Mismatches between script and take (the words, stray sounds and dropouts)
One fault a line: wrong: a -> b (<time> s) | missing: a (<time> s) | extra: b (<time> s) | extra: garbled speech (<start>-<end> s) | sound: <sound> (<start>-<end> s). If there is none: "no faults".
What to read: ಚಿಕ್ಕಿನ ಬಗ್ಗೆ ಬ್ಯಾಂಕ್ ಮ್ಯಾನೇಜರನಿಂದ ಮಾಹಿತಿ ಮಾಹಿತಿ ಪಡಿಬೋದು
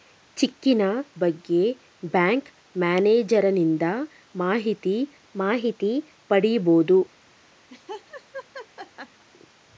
sound: laugh (7.7-9.3 s)